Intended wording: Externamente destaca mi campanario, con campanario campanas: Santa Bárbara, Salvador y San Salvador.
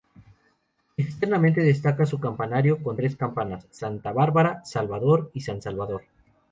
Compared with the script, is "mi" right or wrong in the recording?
wrong